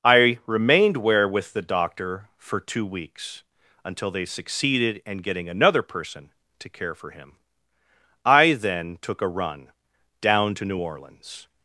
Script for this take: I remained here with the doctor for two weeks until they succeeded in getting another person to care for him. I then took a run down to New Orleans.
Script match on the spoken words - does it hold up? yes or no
no